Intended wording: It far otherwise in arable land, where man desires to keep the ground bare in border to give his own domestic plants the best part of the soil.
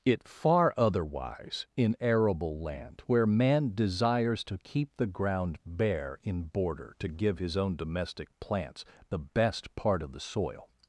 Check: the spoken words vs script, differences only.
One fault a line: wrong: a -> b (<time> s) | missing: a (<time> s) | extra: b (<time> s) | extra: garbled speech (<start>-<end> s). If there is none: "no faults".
no faults